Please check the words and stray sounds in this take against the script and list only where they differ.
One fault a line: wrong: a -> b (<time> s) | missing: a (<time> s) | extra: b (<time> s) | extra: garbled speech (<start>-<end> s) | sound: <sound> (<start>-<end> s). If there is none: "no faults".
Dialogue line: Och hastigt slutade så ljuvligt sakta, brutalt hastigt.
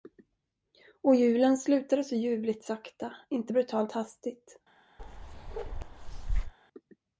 wrong: hastigt -> julen (1.1 s)
extra: inte (3.3 s)
sound: bark (5.0-6.5 s)